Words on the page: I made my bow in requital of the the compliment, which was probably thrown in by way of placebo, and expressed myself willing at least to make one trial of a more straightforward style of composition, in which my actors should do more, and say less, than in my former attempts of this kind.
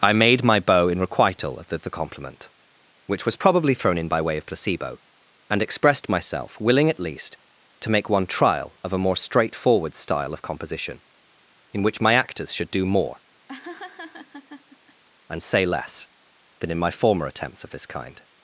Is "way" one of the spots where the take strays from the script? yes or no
no